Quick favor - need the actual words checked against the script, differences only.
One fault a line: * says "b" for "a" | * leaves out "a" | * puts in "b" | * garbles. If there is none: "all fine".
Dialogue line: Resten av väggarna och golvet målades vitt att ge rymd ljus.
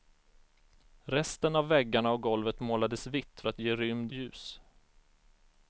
all fine